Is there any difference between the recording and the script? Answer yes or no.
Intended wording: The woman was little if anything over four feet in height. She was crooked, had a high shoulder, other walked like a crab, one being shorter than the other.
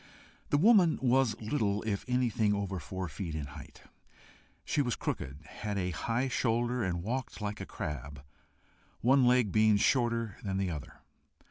yes